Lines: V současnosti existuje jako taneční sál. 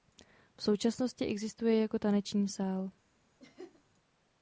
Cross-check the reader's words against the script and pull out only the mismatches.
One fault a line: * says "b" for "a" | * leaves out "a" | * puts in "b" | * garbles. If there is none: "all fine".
all fine